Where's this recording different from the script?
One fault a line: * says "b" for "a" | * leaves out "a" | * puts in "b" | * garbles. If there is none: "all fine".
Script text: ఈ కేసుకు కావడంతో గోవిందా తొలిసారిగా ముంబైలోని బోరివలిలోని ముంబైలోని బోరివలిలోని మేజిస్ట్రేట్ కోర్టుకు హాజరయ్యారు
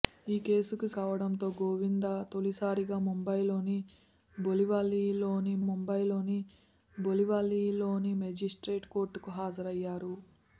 all fine